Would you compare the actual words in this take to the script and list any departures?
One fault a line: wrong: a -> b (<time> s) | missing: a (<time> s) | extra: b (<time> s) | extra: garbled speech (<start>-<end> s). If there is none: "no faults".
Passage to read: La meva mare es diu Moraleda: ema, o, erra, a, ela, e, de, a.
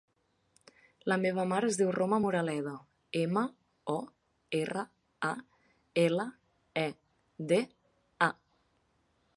extra: Roma (2.0 s)